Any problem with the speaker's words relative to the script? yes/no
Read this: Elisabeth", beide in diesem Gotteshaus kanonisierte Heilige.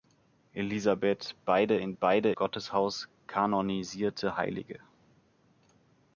yes